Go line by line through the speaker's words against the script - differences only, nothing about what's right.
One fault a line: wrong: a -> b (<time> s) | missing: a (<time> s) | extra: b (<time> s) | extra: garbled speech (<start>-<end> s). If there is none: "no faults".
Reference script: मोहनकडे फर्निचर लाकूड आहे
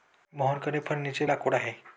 no faults